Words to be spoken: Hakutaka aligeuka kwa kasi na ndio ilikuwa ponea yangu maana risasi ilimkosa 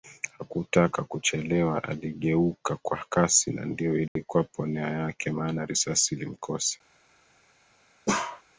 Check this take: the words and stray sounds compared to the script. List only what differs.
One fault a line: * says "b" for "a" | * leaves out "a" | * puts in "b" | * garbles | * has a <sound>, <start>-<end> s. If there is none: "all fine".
* puts in "kuchelewa"
* has a dropout, 4.1-4.2 s
* says "yake" for "yangu"
* has a bark, 8.1-8.4 s